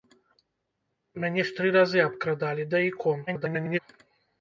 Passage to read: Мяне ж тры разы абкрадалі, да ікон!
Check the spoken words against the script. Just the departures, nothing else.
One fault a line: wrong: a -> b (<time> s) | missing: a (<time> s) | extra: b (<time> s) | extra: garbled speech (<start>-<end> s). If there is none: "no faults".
extra: garbled speech (3.3-3.8 s)